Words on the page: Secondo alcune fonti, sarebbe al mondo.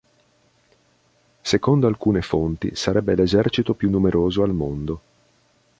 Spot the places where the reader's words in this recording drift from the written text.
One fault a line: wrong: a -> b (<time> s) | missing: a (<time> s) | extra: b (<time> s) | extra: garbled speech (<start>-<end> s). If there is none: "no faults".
extra: l'esercito più numeroso (3.1 s)